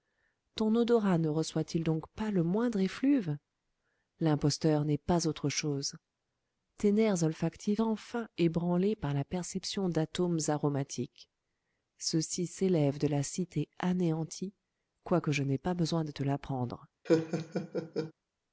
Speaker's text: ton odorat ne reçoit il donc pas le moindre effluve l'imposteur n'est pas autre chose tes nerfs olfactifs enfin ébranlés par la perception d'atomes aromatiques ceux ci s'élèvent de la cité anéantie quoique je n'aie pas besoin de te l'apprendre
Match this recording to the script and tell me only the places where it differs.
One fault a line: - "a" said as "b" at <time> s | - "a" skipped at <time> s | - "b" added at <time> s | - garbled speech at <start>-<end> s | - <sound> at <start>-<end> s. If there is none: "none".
- laugh at 17.1-18.1 s